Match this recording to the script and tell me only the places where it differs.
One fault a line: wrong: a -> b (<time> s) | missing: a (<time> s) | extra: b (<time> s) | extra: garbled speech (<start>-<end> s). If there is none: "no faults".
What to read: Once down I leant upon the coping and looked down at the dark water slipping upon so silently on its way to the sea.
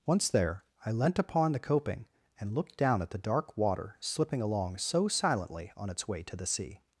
wrong: down -> there (0.3 s)
wrong: upon -> along (4.4 s)